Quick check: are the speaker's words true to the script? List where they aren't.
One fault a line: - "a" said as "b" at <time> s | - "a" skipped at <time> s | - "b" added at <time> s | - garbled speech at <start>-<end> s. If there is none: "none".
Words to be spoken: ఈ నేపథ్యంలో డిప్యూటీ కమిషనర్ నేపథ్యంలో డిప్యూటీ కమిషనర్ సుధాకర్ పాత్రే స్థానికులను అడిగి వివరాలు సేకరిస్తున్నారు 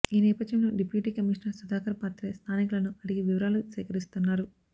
- "నేపథ్యంలో డిప్యూటీ కమిషనర్" skipped at 1.6 s